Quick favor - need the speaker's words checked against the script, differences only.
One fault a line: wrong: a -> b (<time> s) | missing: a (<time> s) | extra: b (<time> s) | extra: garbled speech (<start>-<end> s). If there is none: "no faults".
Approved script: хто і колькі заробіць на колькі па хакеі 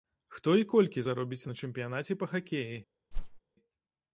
wrong: колькі -> чэмпіянаце (1.6 s)